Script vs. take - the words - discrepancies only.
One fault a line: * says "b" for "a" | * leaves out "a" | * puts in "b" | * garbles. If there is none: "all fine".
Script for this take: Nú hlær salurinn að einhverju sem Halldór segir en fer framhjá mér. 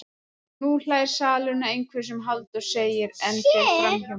all fine